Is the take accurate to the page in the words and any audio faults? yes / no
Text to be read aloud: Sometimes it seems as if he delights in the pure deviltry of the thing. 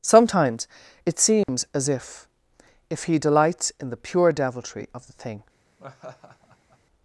no